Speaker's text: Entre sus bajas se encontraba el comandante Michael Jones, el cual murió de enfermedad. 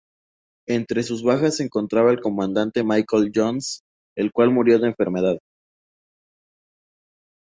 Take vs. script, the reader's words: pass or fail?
pass